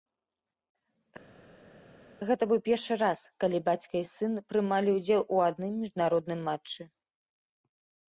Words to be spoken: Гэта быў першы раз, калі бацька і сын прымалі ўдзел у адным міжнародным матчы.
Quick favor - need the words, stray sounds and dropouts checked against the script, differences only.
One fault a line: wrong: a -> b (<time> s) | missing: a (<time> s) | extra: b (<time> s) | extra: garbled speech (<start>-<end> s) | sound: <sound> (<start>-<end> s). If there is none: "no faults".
no faults